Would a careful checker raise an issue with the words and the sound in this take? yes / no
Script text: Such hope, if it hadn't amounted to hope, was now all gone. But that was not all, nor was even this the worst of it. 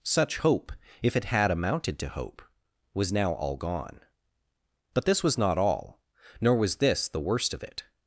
yes